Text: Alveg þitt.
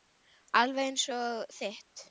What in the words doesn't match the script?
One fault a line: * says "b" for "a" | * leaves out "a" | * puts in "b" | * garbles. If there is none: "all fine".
* puts in "eins og"